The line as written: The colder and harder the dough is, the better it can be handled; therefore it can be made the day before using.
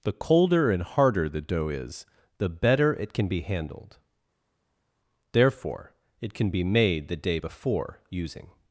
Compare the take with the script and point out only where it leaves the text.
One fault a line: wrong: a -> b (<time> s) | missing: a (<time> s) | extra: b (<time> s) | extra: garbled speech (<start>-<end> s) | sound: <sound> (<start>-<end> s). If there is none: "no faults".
no faults